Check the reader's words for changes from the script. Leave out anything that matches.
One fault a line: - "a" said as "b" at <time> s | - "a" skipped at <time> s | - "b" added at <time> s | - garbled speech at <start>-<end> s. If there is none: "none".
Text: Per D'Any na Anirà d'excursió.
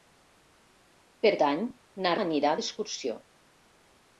none